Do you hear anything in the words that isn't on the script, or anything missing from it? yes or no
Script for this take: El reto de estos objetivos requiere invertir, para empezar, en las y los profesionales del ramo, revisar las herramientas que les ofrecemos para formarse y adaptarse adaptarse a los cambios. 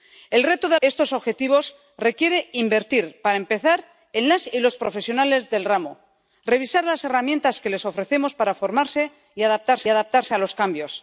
no